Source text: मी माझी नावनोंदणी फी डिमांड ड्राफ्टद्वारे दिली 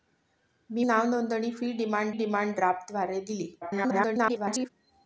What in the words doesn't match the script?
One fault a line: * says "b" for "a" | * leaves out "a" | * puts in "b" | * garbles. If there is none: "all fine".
* leaves out "माझी"
* puts in "डिमांड"
* garbles